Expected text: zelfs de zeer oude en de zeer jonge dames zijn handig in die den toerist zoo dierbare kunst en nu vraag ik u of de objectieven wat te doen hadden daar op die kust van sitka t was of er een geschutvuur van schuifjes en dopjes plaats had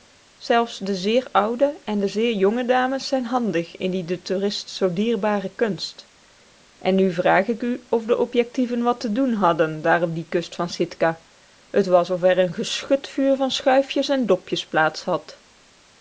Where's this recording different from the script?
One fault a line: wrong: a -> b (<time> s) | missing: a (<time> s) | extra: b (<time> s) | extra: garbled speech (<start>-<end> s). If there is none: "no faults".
no faults